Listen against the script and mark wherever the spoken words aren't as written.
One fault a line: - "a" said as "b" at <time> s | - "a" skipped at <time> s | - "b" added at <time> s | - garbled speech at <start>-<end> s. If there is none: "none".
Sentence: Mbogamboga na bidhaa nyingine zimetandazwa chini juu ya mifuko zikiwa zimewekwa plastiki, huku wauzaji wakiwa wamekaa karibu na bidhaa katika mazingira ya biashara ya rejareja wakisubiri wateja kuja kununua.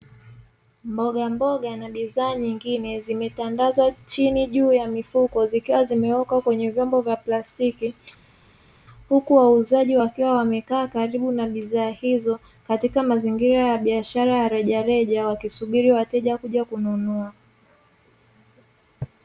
- "kwenye vyombo vya" added at 6.4 s
- "hizo" added at 11.9 s